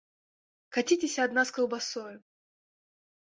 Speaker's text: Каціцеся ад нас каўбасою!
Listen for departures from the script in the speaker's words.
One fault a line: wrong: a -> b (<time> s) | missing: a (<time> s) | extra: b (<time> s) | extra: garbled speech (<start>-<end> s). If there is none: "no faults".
no faults